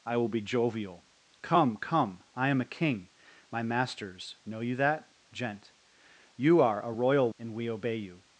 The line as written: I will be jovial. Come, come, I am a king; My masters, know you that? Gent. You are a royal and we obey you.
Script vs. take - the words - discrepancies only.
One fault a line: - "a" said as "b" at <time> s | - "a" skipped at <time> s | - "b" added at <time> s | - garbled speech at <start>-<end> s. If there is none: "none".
none